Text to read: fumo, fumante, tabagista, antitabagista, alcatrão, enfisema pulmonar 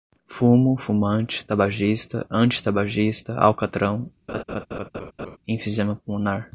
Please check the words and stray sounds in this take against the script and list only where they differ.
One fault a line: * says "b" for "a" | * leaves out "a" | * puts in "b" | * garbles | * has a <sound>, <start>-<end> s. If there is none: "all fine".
* has a laugh, 4.3-5.4 s